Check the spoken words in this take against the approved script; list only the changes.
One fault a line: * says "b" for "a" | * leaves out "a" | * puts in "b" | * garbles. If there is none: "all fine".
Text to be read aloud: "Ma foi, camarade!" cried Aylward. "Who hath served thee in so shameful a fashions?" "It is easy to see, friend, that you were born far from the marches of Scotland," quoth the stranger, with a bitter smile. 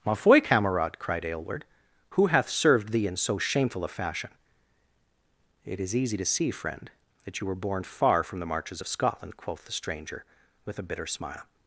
* says "fashion" for "fashions"